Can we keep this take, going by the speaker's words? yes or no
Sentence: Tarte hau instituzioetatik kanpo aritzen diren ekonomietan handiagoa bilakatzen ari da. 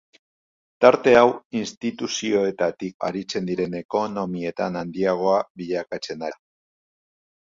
no